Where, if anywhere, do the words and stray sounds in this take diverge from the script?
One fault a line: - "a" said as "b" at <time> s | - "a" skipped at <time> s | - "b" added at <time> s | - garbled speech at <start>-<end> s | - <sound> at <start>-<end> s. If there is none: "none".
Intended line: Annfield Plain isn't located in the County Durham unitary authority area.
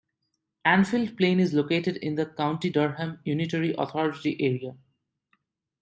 - "isn't" said as "is" at 1.4 s